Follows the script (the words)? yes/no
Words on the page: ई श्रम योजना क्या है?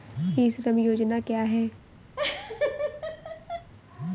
yes